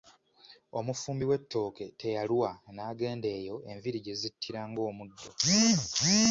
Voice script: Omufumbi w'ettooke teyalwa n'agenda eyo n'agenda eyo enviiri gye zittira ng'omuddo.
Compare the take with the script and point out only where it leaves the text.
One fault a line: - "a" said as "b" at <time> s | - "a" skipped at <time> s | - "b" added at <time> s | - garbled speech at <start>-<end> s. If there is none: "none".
- "n'agenda eyo" skipped at 3.6 s